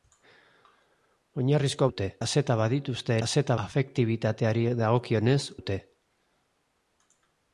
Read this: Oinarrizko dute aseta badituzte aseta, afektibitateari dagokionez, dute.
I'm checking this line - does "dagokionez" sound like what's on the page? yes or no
yes